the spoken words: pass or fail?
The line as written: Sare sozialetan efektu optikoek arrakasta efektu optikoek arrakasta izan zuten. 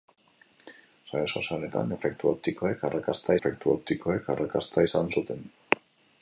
pass